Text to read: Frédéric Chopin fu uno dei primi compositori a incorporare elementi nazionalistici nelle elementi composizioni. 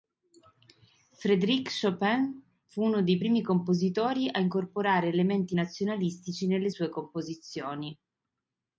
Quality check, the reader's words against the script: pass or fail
fail